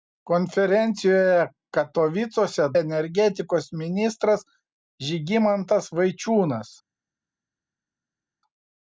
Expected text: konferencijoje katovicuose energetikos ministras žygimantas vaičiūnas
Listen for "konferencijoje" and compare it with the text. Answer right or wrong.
right